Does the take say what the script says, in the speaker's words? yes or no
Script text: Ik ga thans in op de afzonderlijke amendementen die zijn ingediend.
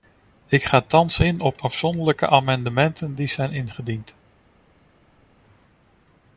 no